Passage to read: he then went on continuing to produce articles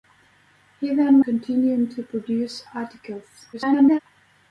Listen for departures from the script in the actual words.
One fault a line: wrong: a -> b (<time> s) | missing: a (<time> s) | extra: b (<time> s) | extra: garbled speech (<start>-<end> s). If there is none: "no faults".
missing: went on (1.2 s)
extra: garbled speech (3.5-4.0 s)